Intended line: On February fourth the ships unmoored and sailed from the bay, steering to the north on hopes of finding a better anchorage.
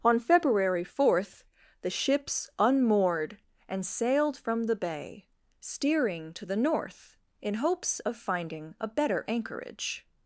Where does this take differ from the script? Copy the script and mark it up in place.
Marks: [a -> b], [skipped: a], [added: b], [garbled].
On February fourth the ships unmoored and sailed from the bay, steering to the north [on -> in] hopes of finding a better anchorage.